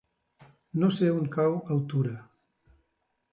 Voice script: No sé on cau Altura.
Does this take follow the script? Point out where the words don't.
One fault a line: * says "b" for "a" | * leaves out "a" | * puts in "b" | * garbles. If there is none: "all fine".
all fine